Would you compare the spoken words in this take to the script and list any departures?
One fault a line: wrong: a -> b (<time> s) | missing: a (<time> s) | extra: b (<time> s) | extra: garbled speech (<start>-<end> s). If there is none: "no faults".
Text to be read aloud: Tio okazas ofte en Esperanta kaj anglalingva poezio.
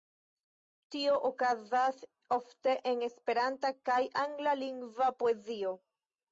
no faults